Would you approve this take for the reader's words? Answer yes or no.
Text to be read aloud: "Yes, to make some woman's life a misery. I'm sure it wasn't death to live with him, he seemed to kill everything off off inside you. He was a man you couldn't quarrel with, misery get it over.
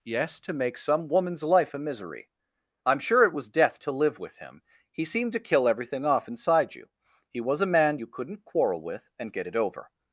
no